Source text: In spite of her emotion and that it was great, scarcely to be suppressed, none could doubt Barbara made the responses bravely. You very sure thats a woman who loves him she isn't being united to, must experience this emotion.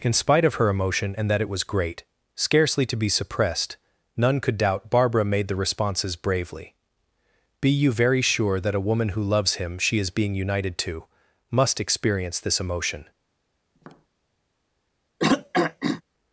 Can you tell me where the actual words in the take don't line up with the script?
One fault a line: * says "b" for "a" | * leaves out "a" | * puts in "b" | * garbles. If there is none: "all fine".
* puts in "Be"
* says "that" for "thats"
* says "is" for "isn't"